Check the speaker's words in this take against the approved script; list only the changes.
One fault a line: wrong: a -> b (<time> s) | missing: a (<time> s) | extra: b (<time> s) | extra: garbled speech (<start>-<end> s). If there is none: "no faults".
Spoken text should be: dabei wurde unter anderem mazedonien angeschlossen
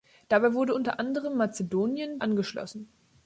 no faults